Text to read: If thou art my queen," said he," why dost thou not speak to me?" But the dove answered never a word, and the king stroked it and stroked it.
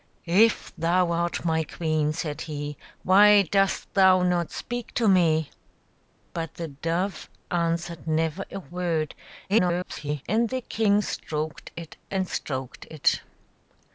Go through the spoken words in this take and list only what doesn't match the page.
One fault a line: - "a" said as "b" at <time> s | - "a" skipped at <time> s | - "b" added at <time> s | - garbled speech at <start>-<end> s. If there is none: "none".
- garbled speech at 9.5-10.2 s